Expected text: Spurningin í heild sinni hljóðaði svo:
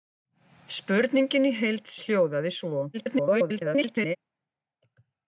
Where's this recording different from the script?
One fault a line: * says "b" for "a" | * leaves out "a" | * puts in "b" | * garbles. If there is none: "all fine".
* leaves out "sinni"
* garbles